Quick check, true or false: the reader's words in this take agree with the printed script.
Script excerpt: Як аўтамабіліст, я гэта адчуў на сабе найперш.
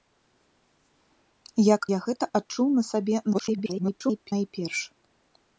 false